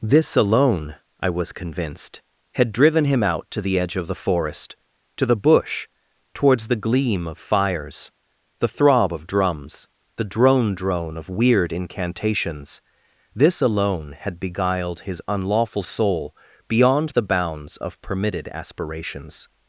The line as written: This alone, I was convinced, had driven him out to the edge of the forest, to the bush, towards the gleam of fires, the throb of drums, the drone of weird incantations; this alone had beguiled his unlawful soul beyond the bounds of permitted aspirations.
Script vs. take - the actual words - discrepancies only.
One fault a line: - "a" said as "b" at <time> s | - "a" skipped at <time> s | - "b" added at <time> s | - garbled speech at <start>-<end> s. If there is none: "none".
- "drone" added at 10.7 s